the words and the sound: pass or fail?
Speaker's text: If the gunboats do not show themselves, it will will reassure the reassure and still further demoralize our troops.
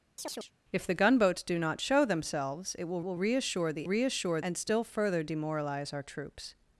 fail